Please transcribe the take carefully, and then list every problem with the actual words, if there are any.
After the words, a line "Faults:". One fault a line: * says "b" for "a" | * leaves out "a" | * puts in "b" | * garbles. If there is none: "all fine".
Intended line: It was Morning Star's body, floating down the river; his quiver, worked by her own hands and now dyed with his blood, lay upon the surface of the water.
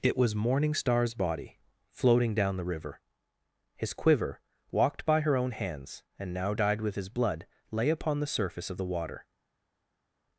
It was Morning Star's body, floating down the river; his quiver, walked by her own hands and now dyed with his blood, lay upon the surface of the water.
Faults:
* says "walked" for "worked"